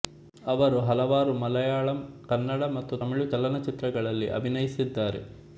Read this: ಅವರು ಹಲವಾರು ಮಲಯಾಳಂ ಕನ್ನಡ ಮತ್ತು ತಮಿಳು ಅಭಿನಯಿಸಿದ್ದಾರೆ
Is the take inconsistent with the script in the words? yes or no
yes